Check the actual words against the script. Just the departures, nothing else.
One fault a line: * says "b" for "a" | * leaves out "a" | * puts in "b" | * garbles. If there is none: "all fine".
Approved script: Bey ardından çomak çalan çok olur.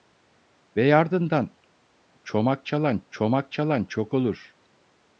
* puts in "çomak çalan"